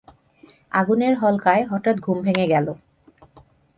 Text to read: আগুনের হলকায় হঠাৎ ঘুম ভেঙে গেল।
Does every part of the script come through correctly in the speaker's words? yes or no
yes